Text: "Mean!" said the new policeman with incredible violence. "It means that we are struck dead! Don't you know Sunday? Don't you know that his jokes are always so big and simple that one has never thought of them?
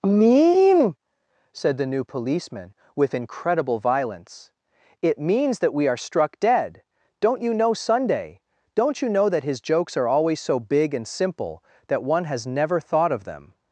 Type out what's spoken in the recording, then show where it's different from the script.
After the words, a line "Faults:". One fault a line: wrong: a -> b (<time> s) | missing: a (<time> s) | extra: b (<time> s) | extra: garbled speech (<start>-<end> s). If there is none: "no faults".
"Mean!" said the new policeman with incredible violence. "It means that we are struck dead! Don't you know Sunday? Don't you know that his jokes are always so big and simple that one has never thought of them?
Faults:
no faults